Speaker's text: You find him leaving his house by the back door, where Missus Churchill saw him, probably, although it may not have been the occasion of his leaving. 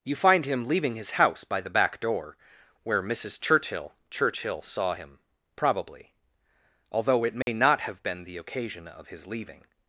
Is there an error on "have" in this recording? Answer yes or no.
no